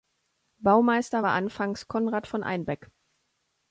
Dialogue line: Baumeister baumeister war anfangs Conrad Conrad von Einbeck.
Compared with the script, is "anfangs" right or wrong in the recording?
right